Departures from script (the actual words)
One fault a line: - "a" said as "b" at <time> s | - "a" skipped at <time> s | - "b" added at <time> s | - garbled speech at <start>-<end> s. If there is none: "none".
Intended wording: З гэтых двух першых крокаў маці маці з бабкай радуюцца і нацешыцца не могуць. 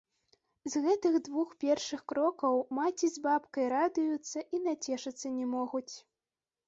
- "маці" skipped at 3.1 s